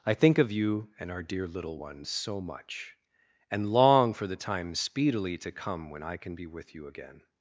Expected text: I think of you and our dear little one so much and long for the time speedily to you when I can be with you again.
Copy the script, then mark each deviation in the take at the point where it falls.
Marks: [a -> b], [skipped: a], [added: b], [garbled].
I think of you and our dear little one so much and long for the time speedily to [you -> come] when I can be with you again.